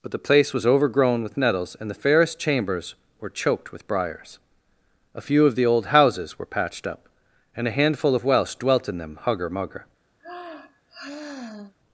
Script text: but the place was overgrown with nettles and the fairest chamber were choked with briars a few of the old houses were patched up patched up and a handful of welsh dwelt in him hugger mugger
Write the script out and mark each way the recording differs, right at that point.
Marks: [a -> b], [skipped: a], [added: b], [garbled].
but the place was overgrown with nettles and the fairest [chamber -> chambers] were choked with briars a few of the old houses were patched up [skipped: patched up] and a handful of welsh dwelt in [him -> them] hugger mugger